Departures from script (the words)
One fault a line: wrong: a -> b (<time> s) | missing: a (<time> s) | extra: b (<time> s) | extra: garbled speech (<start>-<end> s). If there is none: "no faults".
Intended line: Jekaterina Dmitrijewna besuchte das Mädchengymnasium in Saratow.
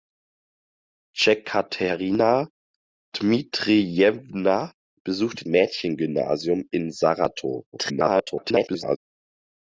missing: das (5.5 s)
extra: garbled speech (7.7-9.0 s)